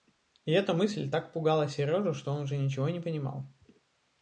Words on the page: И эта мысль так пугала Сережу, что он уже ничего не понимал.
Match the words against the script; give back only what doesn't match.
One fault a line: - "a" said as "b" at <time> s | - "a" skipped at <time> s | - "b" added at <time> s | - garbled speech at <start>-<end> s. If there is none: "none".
none